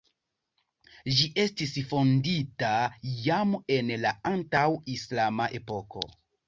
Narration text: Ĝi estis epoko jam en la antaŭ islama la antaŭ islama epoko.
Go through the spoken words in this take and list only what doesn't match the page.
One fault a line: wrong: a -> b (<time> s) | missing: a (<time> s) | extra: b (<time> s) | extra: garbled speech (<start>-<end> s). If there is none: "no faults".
wrong: epoko -> fondita (1.9 s)
missing: la antaŭ islama (5.6 s)